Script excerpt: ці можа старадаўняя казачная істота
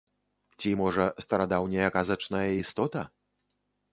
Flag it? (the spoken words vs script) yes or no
no